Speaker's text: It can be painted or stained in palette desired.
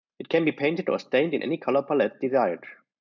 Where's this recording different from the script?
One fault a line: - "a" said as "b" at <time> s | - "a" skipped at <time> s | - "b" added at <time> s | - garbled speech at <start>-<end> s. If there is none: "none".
- "any color" added at 1.4 s